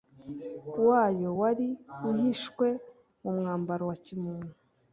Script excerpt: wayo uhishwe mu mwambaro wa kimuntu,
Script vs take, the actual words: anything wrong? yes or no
yes